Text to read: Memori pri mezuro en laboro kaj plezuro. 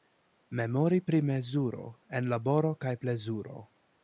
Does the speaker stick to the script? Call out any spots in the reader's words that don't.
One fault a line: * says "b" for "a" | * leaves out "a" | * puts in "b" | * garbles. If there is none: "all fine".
all fine